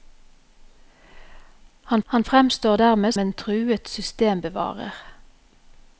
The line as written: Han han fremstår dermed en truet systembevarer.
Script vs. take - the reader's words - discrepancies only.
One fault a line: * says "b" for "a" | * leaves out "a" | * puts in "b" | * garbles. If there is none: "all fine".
all fine